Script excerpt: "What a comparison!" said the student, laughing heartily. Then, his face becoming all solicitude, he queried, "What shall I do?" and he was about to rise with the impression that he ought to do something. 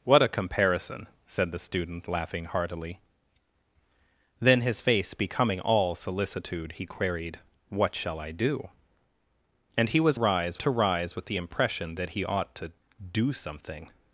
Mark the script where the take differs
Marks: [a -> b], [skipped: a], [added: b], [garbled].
"What a comparison!" said the student, laughing heartily. Then, his face becoming all solicitude, he queried, "What shall I do?" and he was [about -> rise] to rise with the impression that he ought to do something.